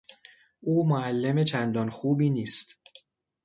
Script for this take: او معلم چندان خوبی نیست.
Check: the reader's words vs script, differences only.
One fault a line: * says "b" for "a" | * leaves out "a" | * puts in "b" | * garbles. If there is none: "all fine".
all fine